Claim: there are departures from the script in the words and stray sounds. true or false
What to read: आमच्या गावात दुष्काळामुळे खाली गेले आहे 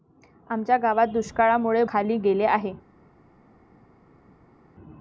false